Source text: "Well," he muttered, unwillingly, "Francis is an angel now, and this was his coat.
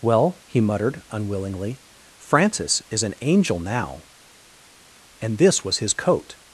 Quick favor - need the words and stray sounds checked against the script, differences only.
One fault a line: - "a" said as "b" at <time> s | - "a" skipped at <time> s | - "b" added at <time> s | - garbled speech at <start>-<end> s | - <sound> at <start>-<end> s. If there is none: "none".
none